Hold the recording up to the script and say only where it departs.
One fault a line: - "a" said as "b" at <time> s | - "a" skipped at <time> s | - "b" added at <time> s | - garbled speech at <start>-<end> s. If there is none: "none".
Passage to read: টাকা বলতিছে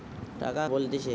none